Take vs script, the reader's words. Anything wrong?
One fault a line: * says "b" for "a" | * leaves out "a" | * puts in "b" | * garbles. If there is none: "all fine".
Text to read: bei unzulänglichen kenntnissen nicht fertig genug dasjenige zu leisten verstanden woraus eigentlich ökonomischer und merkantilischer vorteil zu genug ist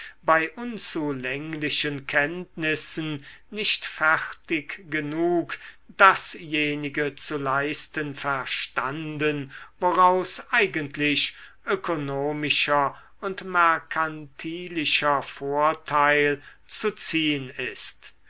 * says "ziehn" for "genug"